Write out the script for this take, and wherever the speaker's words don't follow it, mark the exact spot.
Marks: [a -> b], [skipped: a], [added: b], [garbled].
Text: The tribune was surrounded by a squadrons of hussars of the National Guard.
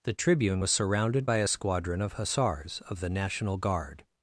The tribune was surrounded by a [squadrons -> squadron] of hussars of the National Guard.